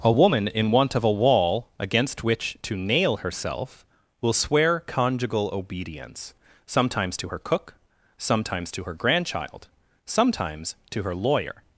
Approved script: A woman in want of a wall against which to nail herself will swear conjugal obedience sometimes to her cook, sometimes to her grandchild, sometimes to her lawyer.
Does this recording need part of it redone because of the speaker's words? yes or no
no